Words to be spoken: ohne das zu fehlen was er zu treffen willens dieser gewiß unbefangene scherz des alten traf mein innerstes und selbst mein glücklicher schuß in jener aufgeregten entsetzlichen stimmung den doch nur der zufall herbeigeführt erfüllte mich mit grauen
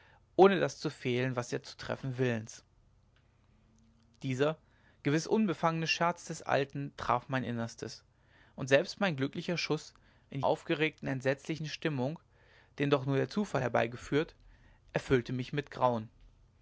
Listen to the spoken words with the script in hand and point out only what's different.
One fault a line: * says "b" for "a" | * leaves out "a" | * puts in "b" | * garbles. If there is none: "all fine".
* leaves out "jener"